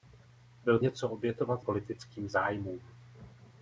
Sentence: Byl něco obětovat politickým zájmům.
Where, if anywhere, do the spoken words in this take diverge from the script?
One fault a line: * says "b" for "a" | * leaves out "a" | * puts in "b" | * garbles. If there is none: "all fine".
all fine